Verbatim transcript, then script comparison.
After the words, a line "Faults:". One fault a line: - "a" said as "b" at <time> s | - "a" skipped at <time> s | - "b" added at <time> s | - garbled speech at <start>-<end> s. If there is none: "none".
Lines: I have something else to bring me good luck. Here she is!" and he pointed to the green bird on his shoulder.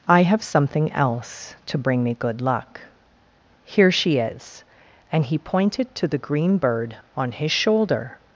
I have something else to bring me good luck. Here she is!" and he pointed to the green bird on his shoulder.
Faults:
none